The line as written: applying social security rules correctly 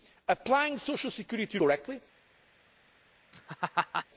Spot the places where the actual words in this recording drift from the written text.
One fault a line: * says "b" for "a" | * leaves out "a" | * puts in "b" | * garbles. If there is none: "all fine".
* leaves out "rules"